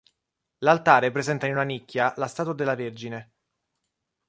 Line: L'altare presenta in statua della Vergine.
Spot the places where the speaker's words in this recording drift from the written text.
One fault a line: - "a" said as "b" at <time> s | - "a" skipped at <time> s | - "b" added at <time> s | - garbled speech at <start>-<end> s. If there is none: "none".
- "una nicchia la" added at 1.5 s